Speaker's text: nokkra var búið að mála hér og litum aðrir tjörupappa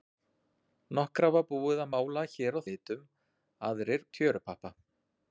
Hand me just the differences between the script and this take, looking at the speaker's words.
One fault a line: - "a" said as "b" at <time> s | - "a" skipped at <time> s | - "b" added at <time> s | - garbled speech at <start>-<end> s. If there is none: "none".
none